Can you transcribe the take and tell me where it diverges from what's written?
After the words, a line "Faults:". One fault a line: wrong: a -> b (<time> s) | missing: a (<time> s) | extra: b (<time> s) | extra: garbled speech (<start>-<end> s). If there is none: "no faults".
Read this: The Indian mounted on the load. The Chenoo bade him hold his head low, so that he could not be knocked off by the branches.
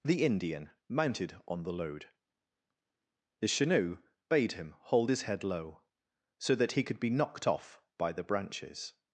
The Indian mounted on the load. The Chenoo bade him hold his head low, so that he could be knocked off by the branches.
Faults:
missing: not (7.0 s)